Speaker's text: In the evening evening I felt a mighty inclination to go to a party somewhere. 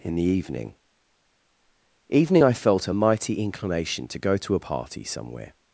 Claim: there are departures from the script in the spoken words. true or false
false